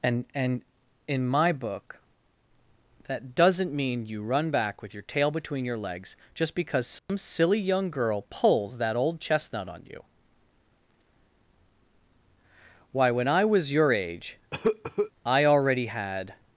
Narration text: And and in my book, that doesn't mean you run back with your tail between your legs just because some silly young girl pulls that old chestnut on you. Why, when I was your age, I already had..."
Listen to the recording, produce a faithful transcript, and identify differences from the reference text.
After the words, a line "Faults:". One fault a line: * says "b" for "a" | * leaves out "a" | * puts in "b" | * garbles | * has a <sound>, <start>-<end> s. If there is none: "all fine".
And and in my book, that doesn't mean you run back with your tail between your legs just because some silly young girl pulls that old chestnut on you. Why, when I was your age, I already had..."
Faults:
* has a dropout, 7.0-7.1 s
* has a cough, 14.5-15.1 s